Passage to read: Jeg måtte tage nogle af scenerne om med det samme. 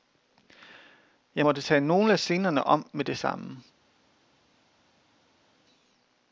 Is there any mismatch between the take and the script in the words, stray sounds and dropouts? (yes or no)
no